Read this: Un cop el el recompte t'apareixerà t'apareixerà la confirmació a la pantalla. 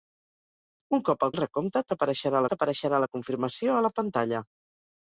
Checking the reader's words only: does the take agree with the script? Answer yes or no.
yes